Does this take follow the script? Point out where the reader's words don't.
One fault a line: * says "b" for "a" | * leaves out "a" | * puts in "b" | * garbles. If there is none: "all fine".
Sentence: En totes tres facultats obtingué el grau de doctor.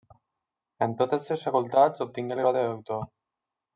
all fine